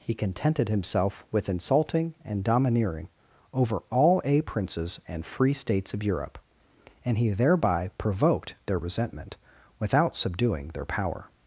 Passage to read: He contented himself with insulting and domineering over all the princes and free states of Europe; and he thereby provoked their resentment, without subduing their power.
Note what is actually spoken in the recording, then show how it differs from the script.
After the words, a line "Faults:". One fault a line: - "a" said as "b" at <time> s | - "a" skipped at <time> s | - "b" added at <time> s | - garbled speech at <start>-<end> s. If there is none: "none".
He contented himself with insulting and domineering over all a princes and free states of Europe; and he thereby provoked their resentment, without subduing their power.
Faults:
- "the" said as "a" at 4.2 s